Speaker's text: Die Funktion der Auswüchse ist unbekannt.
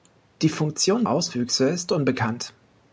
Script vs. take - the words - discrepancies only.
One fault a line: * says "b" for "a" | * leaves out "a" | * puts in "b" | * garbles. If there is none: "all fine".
* leaves out "der"